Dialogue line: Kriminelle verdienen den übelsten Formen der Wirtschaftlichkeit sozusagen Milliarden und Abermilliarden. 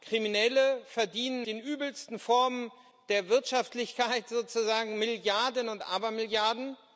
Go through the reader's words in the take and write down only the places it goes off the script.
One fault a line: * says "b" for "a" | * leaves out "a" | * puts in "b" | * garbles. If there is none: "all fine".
all fine